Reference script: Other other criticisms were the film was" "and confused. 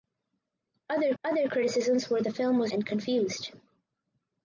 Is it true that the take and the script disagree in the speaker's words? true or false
false